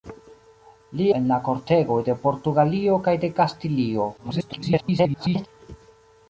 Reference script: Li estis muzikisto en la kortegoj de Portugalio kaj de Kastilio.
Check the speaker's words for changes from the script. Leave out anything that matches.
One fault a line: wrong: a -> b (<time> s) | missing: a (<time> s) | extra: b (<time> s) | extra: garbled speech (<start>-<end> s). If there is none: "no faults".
missing: estis muzikisto (1.1 s)
extra: garbled speech (4.2-5.5 s)